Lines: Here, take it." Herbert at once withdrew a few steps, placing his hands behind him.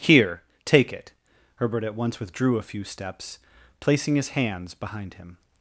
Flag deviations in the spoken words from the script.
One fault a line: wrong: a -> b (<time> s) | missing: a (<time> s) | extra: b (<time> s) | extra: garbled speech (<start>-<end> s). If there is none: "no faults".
no faults